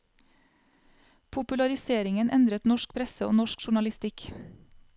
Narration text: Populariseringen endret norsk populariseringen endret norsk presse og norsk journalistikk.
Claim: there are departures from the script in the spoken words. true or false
true